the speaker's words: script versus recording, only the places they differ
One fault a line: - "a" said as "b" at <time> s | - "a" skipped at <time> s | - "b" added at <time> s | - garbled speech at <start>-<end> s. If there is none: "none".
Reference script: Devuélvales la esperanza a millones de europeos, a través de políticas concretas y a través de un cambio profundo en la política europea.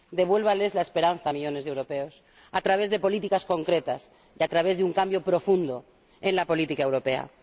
none